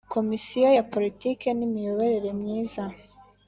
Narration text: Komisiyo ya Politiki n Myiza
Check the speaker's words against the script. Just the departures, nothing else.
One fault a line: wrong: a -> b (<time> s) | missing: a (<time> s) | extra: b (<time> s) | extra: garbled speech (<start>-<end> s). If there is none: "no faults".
extra: Imiyoborere (1.7 s)